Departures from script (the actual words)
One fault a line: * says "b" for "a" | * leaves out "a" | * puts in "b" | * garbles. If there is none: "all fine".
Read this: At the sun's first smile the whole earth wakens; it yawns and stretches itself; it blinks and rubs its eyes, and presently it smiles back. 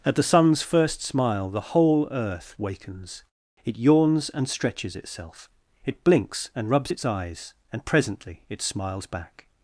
all fine